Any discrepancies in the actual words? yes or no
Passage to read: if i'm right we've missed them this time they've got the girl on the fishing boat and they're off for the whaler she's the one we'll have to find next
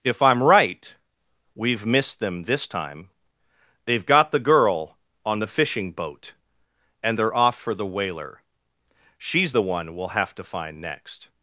no